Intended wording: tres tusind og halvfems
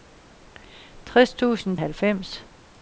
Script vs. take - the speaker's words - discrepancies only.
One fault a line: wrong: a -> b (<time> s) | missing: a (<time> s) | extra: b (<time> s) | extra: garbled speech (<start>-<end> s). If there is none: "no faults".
no faults